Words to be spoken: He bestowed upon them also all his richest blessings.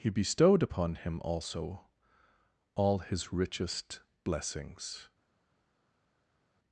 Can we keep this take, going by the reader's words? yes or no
no